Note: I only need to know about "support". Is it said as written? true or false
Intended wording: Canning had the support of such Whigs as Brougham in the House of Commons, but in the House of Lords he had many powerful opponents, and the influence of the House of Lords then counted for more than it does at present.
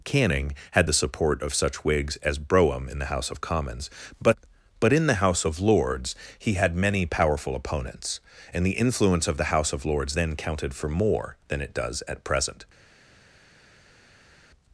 true